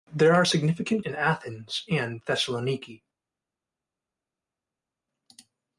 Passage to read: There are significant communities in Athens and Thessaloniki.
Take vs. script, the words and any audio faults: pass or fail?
fail